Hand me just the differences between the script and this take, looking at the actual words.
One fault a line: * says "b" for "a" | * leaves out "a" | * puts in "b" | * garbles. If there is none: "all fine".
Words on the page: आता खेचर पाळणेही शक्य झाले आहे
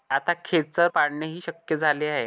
all fine